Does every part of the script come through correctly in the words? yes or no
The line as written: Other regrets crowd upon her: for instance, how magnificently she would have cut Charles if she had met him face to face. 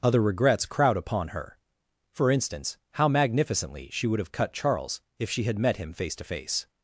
yes